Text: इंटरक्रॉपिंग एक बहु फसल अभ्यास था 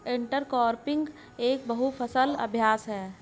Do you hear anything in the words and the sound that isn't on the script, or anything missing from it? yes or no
yes